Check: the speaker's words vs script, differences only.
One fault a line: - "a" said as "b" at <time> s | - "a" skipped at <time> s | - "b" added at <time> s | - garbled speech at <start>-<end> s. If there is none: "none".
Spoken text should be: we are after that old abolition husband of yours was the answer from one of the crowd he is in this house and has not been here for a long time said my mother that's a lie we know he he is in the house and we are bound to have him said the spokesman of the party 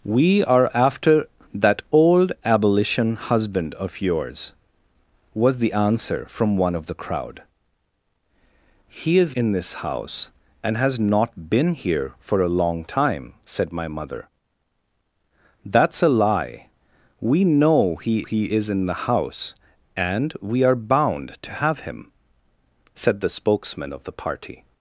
none